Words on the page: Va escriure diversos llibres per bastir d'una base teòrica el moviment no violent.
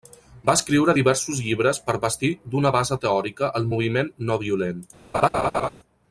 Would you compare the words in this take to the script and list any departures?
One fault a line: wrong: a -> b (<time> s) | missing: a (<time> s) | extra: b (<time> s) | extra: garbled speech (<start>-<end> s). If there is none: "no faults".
no faults